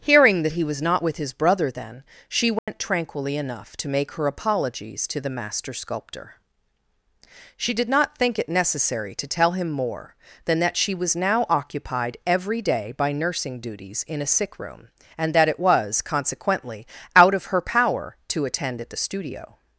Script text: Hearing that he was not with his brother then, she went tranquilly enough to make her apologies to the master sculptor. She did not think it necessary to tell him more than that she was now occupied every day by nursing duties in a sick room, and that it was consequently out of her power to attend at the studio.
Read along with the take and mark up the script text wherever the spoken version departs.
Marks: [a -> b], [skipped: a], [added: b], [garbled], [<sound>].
Hearing that he was not with his brother then, she went [dropout] tranquilly enough to make her apologies to the master sculptor. She did not think it necessary to tell him more than that she was now occupied every day by nursing duties in a sick room, and that it was consequently out of her power to attend at the studio.